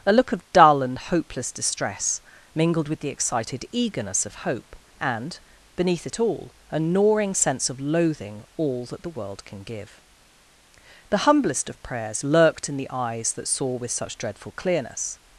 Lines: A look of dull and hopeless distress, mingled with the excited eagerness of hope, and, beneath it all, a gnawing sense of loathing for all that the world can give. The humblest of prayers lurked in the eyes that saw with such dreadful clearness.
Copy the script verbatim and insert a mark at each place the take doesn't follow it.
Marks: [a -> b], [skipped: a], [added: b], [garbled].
A look of dull and hopeless distress, mingled with the excited eagerness of hope, and, beneath it all, a gnawing sense of loathing [skipped: for] all that the world can give. The humblest of prayers lurked in the eyes that saw with such dreadful clearness.